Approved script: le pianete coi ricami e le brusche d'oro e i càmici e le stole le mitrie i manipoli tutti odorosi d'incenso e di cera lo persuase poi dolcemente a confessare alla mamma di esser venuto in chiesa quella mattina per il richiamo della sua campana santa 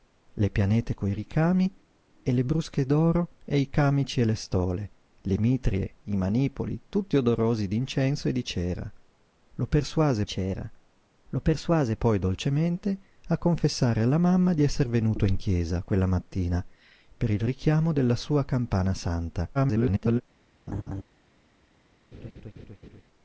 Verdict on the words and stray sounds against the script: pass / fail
fail